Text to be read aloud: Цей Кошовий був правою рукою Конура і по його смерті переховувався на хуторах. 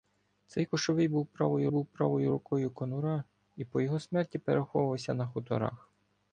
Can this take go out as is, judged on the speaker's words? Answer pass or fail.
fail